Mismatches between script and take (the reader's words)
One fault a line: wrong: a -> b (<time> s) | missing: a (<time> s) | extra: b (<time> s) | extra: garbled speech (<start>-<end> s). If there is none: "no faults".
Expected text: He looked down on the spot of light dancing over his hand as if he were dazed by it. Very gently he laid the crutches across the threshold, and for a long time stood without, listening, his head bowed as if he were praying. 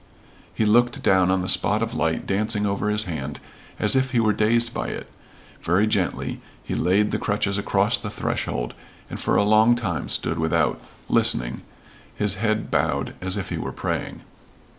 no faults